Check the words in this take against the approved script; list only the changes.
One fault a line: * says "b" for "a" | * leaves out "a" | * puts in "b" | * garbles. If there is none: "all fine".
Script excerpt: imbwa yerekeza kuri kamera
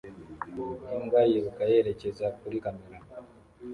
* puts in "yiruka"